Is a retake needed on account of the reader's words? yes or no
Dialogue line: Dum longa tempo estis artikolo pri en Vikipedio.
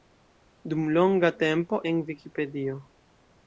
yes